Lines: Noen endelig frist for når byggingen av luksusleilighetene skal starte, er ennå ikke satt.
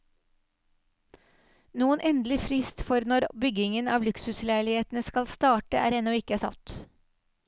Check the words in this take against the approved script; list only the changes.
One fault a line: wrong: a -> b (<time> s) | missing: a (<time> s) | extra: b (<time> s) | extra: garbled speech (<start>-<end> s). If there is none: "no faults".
no faults